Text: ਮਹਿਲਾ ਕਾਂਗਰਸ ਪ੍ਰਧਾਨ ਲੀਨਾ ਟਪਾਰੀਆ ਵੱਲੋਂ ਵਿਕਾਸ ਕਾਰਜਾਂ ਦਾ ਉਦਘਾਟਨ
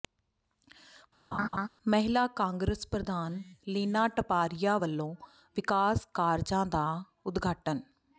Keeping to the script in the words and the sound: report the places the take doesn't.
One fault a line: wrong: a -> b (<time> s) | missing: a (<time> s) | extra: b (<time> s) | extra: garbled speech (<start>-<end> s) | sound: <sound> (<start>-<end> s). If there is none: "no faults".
sound: laugh (1.3-1.7 s)